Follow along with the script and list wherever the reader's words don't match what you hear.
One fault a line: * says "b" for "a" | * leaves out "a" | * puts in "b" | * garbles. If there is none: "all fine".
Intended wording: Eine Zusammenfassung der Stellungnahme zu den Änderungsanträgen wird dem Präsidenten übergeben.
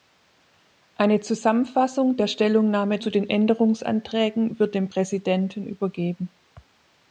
all fine